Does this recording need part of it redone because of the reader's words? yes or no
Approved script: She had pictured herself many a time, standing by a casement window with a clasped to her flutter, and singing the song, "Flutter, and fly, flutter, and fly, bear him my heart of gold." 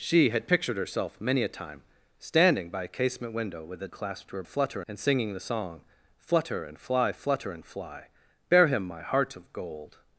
no